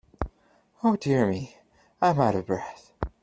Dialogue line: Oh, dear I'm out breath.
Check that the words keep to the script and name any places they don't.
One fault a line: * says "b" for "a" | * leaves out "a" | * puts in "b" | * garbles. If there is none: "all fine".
* puts in "me"
* puts in "of"